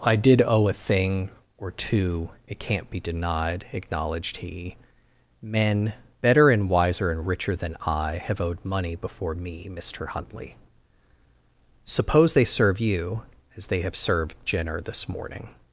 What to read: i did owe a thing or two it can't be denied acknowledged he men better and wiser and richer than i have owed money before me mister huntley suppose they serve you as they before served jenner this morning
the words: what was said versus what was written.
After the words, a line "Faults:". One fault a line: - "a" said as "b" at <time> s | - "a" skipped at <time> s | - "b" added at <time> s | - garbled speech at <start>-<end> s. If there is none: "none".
i did owe a thing or two it can't be denied acknowledged he men better and wiser and richer than i have owed money before me mister huntley suppose they serve you as they have served jenner this morning
Faults:
- "before" said as "have" at 13.8 s